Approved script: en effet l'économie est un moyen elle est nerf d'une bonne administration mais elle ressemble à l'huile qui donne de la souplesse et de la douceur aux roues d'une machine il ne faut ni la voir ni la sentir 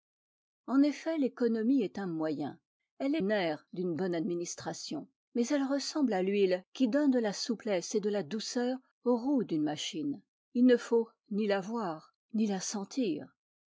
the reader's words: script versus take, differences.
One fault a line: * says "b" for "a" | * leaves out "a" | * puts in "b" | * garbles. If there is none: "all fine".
all fine